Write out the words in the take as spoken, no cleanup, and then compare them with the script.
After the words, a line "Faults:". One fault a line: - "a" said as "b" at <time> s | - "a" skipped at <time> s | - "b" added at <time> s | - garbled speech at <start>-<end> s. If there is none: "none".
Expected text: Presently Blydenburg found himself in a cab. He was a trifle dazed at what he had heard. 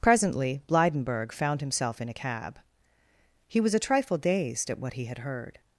Presently Blydenburg found himself in a cab. He was a trifle dazed at what he had heard.
Faults:
none